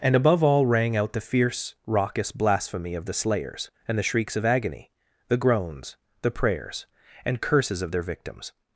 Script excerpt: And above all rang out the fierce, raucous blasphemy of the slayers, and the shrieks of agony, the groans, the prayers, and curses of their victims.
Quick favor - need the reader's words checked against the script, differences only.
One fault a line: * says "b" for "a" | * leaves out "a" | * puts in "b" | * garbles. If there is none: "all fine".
all fine